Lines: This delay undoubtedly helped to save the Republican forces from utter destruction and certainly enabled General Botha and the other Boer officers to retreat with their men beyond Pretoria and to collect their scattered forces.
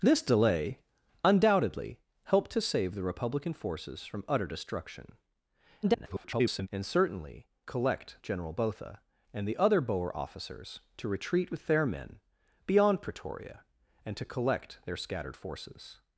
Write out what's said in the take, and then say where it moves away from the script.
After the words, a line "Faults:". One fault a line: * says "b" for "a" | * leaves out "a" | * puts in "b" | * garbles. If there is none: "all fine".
This delay undoubtedly helped to save the Republican forces from utter destruction [garbled] and certainly collect General Botha and the other Boer officers to retreat with their men beyond Pretoria and to collect their scattered forces.
Faults:
* garbles
* says "collect" for "enabled"